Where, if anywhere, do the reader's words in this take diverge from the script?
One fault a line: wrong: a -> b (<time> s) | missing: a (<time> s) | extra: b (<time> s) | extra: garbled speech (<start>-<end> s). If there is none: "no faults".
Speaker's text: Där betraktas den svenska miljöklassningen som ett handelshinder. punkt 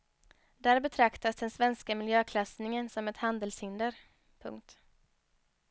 no faults